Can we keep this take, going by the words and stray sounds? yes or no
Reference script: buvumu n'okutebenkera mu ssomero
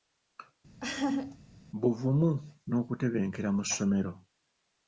no